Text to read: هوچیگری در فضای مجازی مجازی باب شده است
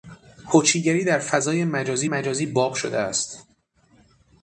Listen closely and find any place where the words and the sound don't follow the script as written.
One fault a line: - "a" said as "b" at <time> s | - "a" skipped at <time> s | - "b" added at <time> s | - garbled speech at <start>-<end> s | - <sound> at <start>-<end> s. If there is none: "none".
none